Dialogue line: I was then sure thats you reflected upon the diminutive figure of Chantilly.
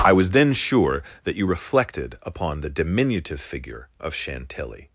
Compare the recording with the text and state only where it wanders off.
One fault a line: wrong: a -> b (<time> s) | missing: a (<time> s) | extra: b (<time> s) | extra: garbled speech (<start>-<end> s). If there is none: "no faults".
wrong: thats -> that (1.2 s)